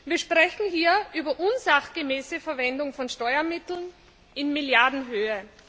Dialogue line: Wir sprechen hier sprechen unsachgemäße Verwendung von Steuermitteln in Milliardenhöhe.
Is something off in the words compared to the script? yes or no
yes